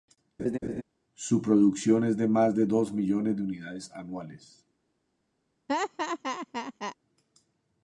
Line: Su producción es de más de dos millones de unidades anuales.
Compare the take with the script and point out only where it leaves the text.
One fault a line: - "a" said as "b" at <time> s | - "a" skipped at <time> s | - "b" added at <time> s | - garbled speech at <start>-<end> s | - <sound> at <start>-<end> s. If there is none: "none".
- laugh at 0.4-0.8 s
- laugh at 5.7-7.0 s